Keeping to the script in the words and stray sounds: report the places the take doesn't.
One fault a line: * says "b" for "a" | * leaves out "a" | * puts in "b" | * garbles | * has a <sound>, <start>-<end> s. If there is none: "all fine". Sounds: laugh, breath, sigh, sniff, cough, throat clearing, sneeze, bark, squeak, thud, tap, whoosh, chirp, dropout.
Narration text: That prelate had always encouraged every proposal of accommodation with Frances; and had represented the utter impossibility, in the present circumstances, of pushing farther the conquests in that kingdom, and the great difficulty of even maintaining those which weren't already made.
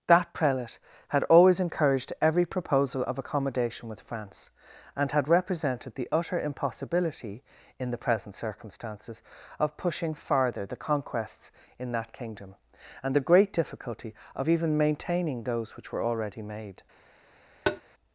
* says "France" for "Frances"
* says "were" for "weren't"
* has a tap, 17.7-17.8 s